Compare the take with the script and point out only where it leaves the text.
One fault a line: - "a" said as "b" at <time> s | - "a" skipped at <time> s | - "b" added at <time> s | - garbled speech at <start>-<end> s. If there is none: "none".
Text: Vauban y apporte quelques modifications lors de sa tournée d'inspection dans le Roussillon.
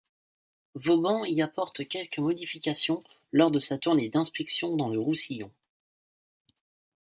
none